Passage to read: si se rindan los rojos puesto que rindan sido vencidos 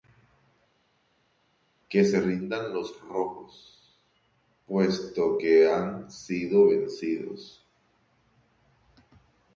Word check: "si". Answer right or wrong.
wrong